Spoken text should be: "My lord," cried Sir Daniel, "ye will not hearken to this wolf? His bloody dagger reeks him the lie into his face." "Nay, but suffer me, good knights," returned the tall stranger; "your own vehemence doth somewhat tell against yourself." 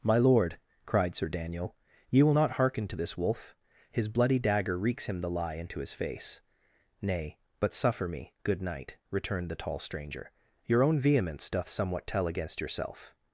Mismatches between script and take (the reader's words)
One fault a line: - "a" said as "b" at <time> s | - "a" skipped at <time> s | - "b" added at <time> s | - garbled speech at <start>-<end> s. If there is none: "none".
- "knights" said as "knight" at 8.6 s